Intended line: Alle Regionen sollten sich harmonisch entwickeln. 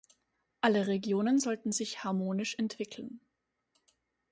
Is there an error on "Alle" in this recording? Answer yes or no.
no